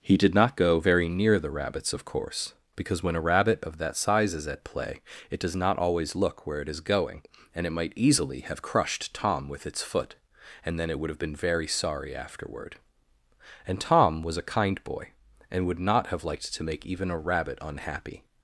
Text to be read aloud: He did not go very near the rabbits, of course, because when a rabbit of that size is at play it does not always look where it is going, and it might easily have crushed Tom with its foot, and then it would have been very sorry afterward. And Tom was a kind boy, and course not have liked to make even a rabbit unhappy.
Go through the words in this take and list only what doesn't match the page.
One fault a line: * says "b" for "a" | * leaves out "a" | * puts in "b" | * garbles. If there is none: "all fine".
* says "would" for "course"